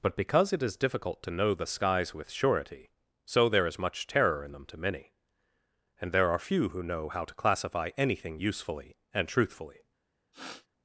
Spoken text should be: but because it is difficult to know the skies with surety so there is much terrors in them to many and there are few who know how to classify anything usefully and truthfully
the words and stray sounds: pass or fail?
fail